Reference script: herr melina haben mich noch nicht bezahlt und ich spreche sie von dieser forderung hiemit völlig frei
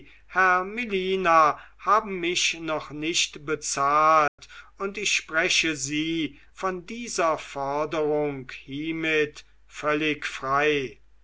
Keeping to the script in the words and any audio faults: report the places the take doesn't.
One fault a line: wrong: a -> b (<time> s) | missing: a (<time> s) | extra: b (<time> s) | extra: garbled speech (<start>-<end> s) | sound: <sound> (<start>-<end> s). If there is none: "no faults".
sound: dropout (4.3-4.4 s)